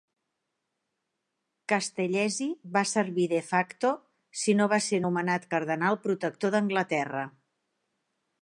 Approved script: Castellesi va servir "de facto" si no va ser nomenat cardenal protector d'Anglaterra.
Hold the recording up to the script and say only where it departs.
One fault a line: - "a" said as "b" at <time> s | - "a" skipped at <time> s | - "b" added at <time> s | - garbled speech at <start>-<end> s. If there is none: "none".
none